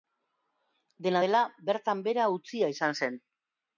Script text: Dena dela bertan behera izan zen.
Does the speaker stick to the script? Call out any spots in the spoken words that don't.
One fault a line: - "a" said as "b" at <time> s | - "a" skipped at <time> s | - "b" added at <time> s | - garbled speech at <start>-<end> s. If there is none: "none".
- "utzia" added at 2.4 s